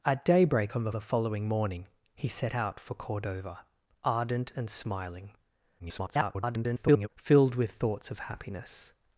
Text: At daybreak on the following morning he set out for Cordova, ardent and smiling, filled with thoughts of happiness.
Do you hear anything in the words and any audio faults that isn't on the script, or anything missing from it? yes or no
yes